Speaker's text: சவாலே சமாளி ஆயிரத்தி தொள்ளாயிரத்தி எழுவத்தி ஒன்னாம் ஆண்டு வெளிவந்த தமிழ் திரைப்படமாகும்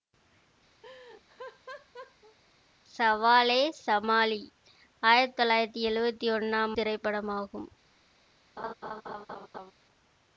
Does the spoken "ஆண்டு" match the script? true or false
false